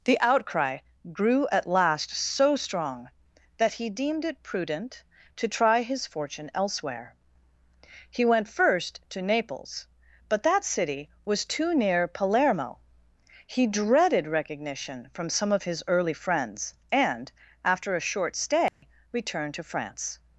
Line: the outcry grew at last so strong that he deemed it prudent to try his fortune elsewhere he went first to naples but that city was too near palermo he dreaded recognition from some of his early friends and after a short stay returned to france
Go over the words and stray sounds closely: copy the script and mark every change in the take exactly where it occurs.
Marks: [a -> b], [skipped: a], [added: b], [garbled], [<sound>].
the outcry grew at last so strong that he deemed it prudent to try his fortune elsewhere he went first to naples but that city was too near palermo he dreaded recognition from some of his early friends and after a short stay [dropout] returned to france